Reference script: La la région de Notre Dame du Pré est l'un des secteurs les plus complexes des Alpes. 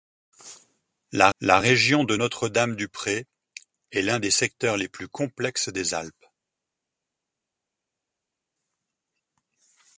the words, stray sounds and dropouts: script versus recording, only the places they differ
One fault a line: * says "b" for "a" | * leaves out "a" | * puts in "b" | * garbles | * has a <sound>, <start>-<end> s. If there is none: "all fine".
all fine